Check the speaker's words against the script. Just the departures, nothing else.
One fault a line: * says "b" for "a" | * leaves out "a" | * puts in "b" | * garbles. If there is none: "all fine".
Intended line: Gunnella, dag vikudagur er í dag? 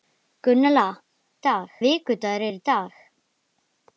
all fine